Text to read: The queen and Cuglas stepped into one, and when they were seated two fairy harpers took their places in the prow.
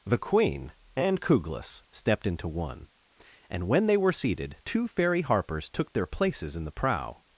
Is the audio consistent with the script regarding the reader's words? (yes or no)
yes